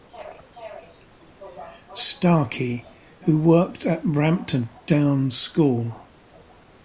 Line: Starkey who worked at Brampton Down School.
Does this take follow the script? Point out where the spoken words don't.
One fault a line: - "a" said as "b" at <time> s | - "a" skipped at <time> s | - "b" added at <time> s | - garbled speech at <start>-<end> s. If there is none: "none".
none